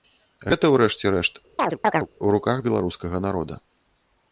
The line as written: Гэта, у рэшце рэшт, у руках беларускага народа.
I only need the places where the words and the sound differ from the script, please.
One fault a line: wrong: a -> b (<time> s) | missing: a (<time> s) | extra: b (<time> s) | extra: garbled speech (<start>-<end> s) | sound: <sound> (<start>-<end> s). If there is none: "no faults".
sound: chirp (1.6-2.1 s)